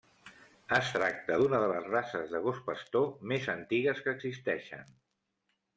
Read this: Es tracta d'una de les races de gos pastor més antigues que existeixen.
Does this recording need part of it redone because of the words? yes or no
no